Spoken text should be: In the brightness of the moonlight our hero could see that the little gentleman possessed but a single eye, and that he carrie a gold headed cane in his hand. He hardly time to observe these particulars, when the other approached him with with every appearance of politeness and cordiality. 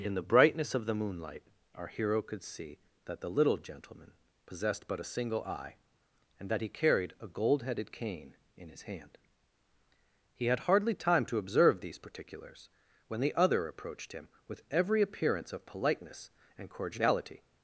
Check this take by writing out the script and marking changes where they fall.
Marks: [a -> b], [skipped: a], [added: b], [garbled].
In the brightness of the moonlight our hero could see that the little gentleman possessed but a single eye, and that he [carrie -> carried] a gold headed cane in his hand. He [added: had] hardly time to observe these particulars, when the other approached him with [skipped: with] every appearance of politeness and cordiality.